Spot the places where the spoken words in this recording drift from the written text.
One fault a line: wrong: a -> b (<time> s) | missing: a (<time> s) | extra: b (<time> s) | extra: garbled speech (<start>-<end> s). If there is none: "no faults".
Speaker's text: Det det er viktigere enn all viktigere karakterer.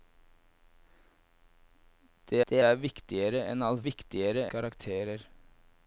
no faults